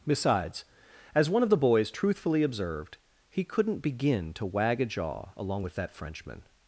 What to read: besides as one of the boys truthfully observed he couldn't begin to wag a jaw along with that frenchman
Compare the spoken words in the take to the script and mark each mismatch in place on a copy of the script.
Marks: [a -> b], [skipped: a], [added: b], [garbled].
besides as one of the boys truthfully observed he couldn't begin to wag a jaw along with that frenchman